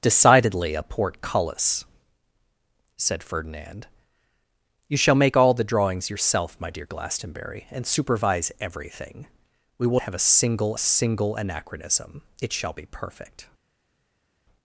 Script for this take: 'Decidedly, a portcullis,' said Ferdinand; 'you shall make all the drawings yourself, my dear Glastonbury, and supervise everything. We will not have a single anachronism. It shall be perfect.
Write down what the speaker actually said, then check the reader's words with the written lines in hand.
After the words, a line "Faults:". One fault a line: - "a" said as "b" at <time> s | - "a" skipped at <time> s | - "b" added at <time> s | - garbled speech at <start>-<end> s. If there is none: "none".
'Decidedly, a portcullis,' said Ferdinand; 'you shall make all the drawings yourself, my dear Glastonbury, and supervise everything. We will have a single single anachronism. It shall be perfect.
Faults:
- "not" skipped at 10.0 s
- "single" added at 10.8 s